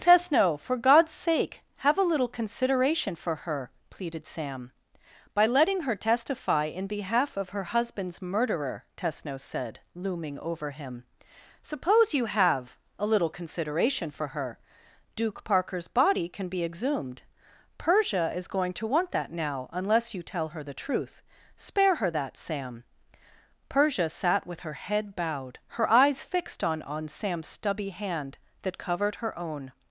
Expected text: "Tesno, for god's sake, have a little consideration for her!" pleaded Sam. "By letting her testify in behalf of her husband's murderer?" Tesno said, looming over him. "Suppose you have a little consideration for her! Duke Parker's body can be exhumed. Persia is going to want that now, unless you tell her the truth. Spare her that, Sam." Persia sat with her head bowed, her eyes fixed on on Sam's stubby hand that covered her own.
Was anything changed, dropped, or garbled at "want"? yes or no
no